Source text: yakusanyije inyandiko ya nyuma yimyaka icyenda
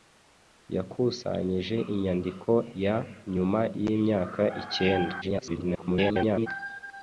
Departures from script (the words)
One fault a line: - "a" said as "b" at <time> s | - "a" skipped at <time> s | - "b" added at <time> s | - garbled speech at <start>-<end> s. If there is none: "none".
- garbled speech at 5.2-6.5 s